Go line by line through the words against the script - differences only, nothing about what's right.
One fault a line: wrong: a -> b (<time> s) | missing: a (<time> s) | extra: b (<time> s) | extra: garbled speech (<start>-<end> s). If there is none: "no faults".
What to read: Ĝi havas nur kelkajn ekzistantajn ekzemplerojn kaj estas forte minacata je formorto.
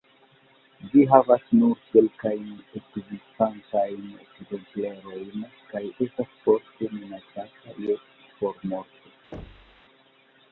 no faults